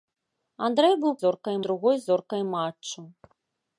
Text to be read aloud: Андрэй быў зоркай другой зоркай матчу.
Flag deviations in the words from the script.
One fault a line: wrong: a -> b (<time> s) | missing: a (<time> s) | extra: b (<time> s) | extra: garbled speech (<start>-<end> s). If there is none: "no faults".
no faults